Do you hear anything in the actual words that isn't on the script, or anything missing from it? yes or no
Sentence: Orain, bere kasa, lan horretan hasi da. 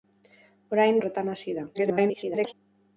yes